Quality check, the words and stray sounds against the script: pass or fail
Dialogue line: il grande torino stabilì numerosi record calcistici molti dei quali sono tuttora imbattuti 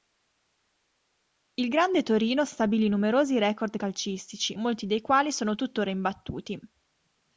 pass